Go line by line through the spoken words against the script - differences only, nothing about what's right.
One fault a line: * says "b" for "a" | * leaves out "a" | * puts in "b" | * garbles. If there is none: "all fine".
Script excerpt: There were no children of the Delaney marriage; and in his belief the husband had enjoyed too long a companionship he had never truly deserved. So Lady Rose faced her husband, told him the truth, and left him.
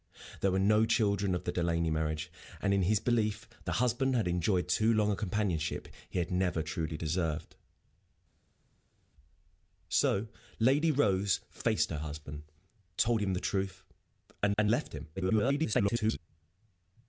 * puts in "and"
* garbles